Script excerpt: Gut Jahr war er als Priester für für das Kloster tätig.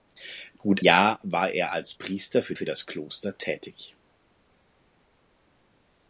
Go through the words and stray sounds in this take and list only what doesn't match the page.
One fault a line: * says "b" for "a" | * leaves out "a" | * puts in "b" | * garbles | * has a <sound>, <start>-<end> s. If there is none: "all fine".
all fine